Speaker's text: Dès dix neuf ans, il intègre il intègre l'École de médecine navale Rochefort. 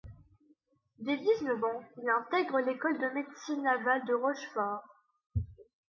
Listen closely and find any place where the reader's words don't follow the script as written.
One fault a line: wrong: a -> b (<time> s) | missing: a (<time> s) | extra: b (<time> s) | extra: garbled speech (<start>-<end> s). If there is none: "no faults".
missing: il intègre (2.6 s)
extra: de (4.0 s)